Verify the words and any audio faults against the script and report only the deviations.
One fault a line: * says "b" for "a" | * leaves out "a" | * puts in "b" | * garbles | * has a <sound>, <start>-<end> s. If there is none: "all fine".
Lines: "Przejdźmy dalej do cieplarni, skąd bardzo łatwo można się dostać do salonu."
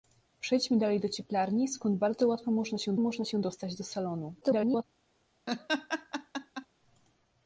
* puts in "można się"
* garbles
* has a laugh, 5.5-6.7 s